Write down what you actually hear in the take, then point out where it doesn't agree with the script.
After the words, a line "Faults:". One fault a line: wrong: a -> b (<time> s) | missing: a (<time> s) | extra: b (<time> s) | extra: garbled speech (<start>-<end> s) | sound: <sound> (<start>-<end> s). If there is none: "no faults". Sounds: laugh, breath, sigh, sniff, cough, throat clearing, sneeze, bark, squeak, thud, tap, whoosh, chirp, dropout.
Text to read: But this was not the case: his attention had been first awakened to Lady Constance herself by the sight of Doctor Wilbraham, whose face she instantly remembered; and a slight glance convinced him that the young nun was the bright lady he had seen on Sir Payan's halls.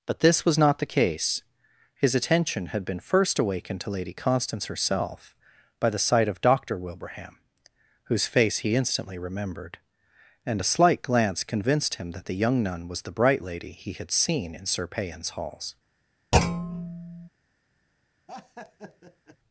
But this was not the case: his attention had been first awakened to Lady Constance herself by the sight of Doctor Wilbraham, whose face he instantly remembered; and a slight glance convinced him that the young nun was the bright lady he had seen in Sir Payan's halls.
Faults:
wrong: she -> he (8.6 s)
wrong: on -> in (14.5 s)
sound: thud (16.3-17.3 s)
sound: laugh (18.3-19.4 s)